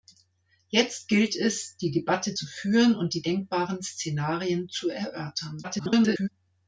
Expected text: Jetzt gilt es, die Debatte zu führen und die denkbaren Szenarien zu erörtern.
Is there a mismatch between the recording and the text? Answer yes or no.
yes